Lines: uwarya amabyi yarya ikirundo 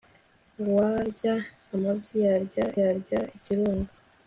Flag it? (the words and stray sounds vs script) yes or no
yes